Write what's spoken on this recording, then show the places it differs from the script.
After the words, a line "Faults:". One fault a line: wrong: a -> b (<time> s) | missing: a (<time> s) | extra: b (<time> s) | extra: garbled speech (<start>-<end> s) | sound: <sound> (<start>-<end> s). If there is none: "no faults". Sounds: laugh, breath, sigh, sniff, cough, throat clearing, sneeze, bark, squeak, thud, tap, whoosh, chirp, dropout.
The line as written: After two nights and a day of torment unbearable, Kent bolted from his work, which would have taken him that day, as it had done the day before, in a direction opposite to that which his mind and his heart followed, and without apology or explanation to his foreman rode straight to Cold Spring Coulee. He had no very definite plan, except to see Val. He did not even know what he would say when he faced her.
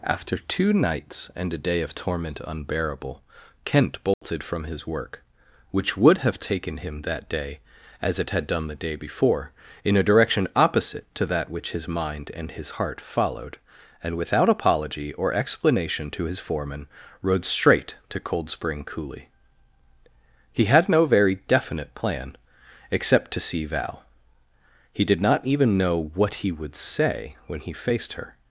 After two nights and a day of torment unbearable, Kent bolted from his work, which would have taken him that day, as it had done the day before, in a direction opposite to that which his mind and his heart followed, and without apology or explanation to his foreman rode straight to Cold Spring Coulee. He had no very definite plan, except to see Val. He did not even know what he would say when he faced her.
Faults:
sound: dropout (4.1-4.2 s)